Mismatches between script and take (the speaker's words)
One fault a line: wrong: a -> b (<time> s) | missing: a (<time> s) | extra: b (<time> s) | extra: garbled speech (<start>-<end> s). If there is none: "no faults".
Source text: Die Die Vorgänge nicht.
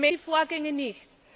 no faults